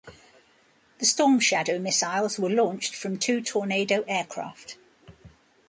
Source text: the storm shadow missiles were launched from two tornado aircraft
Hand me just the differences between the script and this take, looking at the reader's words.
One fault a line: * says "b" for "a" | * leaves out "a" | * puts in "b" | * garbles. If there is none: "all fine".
all fine